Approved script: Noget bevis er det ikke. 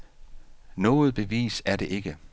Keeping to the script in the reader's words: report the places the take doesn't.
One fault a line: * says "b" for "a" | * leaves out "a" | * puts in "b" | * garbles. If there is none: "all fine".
all fine